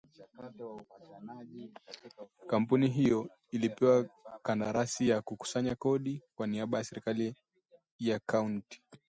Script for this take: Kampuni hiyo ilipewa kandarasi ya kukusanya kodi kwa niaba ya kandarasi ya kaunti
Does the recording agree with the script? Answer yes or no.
no